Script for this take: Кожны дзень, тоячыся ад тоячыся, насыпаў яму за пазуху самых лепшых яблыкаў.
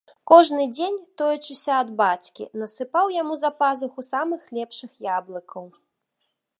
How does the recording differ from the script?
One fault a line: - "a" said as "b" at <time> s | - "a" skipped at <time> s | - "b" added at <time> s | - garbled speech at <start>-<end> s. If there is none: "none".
- "тоячыся" said as "бацькі" at 2.0 s